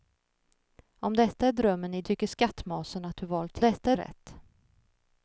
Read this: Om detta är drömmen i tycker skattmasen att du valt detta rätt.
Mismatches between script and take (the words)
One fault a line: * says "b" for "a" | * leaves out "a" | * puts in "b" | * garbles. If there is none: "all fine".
all fine